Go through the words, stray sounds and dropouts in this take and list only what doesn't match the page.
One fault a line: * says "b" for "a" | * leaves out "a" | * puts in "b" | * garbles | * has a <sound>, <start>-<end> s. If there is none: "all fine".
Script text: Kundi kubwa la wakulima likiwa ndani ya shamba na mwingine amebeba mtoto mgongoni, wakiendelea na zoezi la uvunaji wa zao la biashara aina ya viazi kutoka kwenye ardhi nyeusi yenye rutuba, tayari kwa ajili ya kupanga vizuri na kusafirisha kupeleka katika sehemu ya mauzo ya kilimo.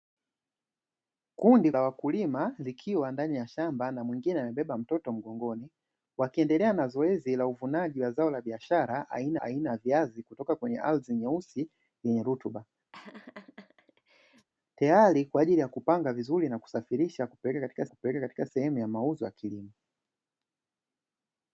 * leaves out "kubwa"
* puts in "aina"
* has a laugh, 12.9-14.5 s
* puts in "kupeleka katika"